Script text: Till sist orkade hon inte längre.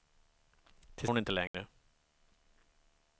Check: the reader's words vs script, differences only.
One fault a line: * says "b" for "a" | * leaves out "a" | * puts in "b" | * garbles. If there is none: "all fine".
* leaves out "sist orkade"